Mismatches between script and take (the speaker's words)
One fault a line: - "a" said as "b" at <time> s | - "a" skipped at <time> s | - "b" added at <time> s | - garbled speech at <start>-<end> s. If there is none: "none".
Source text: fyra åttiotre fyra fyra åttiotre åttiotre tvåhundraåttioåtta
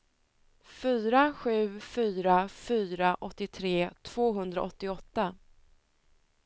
- "åttiotre" said as "sju" at 1.3 s
- "åttiotre" skipped at 3.9 s